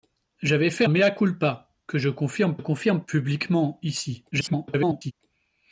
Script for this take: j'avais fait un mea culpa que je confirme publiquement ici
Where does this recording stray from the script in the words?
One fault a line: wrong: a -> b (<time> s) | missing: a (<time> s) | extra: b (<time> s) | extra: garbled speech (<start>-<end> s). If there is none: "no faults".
missing: un (0.8 s)
extra: confirme (2.6 s)
extra: garbled speech (4.3-5.1 s)